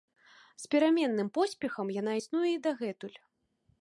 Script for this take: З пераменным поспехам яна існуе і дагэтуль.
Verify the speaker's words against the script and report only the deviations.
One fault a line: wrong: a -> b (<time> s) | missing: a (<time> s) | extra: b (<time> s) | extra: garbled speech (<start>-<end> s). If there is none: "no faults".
no faults